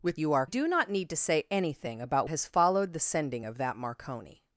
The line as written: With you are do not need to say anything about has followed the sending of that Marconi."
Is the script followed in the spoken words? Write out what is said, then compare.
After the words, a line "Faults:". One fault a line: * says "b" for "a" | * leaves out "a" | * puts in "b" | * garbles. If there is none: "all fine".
With you are do not need to say anything about has followed the sending of that Marconi."
Faults:
all fine